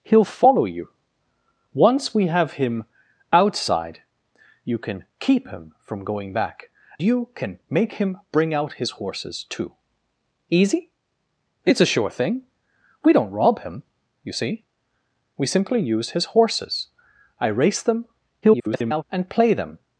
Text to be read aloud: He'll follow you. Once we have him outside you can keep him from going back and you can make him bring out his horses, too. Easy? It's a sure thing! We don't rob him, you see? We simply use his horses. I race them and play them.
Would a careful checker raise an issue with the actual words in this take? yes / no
yes